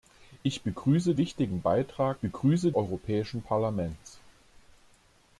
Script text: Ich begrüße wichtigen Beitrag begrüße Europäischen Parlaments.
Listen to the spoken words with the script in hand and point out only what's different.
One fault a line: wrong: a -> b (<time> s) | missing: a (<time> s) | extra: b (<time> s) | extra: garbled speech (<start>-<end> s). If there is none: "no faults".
no faults